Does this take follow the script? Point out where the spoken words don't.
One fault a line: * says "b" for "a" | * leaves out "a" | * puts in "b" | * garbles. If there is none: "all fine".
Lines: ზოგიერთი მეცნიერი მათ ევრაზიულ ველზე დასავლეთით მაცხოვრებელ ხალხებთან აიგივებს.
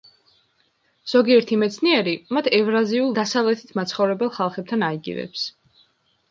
* leaves out "ველზე"